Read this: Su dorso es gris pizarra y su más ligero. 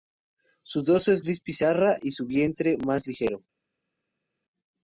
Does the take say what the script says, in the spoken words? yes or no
no